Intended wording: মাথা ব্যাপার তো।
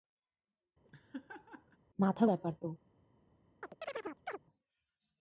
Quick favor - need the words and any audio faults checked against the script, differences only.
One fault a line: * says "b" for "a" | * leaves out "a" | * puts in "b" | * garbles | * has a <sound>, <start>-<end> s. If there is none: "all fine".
* has a laugh, 0.8-1.8 s
* has a chirp, 3.6-4.4 s